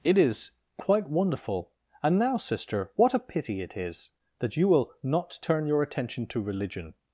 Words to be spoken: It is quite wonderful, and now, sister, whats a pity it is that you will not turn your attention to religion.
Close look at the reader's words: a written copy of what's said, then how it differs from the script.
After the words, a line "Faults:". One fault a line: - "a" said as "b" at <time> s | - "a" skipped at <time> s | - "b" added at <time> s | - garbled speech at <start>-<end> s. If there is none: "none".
It is quite wonderful, and now, sister, what a pity it is that you will not turn your attention to religion.
Faults:
- "whats" said as "what" at 3.0 s